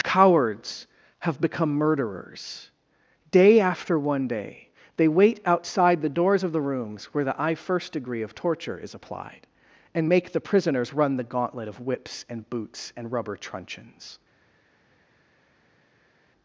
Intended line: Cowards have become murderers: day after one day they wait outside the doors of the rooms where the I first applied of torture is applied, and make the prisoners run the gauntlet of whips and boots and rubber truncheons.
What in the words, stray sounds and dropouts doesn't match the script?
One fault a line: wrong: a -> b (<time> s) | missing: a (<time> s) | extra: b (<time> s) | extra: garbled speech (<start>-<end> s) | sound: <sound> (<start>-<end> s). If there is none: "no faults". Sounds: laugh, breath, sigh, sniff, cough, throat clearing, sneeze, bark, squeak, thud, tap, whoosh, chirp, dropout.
wrong: applied -> degree (7.9 s)